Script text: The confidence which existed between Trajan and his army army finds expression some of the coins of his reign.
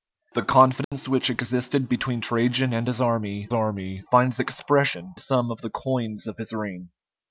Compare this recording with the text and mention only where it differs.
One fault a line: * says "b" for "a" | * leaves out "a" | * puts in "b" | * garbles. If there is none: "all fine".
all fine